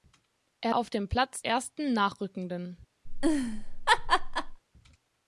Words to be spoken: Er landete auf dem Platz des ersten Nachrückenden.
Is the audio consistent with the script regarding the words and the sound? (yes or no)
no